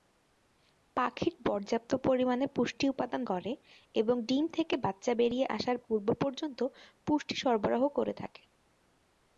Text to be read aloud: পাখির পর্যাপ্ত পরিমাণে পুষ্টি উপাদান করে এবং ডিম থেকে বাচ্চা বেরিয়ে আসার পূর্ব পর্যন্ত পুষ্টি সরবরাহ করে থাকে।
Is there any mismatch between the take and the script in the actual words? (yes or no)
no